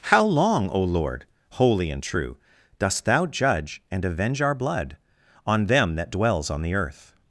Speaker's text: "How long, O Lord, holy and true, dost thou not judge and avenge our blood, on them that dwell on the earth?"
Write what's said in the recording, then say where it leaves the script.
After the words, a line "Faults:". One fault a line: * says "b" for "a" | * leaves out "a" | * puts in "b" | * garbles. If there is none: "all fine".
"How long, O Lord, holy and true, dost thou judge and avenge our blood, on them that dwells on the earth?"
Faults:
* leaves out "not"
* says "dwells" for "dwell"